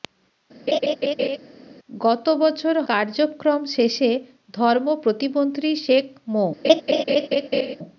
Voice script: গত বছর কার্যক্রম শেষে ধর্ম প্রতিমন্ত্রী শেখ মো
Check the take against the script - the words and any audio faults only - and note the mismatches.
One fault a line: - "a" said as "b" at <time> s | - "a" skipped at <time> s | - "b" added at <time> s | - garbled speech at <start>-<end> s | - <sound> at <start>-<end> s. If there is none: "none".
- laugh at 0.7-1.4 s
- laugh at 6.6-7.8 s